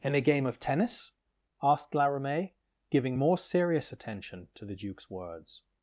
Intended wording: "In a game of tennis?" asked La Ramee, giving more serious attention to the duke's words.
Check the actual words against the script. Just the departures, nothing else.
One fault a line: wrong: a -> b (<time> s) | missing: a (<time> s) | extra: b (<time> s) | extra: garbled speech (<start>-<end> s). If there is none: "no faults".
no faults